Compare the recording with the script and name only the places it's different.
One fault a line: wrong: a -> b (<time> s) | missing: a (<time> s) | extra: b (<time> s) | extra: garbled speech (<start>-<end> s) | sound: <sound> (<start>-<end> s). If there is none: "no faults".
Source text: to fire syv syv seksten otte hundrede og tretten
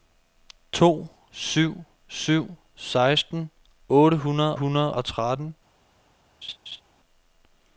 missing: fire (1.1 s)
extra: hundrede (4.5 s)
sound: laugh (6.4-6.8 s)